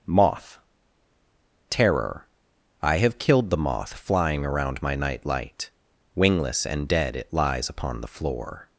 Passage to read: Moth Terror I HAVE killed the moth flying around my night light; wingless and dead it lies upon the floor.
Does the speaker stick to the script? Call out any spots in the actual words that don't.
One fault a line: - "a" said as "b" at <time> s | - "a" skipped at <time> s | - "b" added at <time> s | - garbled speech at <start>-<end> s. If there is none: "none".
none